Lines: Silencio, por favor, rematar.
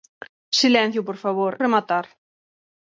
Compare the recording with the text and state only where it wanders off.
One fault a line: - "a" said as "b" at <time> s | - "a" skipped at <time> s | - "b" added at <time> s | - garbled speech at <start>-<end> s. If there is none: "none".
none